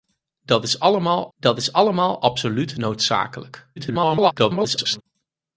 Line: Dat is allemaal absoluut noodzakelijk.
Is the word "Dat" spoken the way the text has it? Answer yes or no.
yes